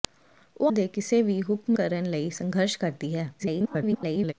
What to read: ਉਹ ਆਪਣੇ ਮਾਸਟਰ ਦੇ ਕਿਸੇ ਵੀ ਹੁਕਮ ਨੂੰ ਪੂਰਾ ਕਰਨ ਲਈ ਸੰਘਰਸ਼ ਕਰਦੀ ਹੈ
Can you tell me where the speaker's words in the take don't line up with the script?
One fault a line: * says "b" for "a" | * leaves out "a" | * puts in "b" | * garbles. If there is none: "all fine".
* leaves out "ਆਪਣੇ ਮਾਸਟਰ"
* leaves out "ਨੂੰ ਪੂਰਾ"
* garbles